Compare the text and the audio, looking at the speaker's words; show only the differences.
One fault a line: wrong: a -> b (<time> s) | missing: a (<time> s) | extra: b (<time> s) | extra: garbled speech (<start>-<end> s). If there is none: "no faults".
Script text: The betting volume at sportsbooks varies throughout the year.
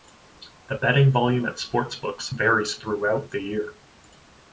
no faults